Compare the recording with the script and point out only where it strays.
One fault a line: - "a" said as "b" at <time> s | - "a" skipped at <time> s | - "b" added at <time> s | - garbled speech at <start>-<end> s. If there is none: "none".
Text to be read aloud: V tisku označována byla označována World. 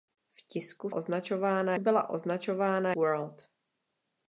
none